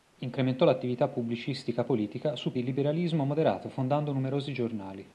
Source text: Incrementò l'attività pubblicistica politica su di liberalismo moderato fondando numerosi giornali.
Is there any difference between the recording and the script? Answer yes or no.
no